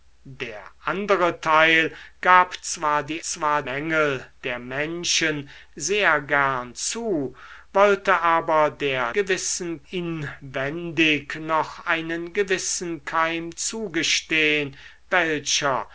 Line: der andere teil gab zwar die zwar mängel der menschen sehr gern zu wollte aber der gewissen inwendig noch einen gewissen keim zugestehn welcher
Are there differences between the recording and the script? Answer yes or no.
no